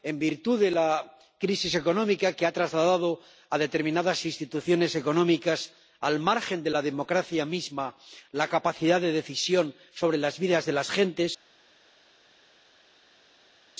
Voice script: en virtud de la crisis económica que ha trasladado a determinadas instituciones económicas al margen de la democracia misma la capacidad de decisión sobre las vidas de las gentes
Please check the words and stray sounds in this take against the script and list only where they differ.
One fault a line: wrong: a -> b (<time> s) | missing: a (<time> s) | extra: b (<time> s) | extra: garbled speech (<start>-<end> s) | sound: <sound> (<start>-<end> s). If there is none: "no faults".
no faults